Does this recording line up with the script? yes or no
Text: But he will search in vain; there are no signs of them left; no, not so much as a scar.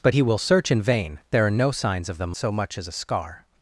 no